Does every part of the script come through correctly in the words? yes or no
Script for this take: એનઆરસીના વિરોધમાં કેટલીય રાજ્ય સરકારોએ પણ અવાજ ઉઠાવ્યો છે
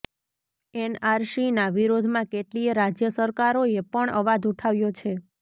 yes